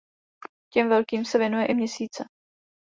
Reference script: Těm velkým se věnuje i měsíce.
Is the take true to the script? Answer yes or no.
yes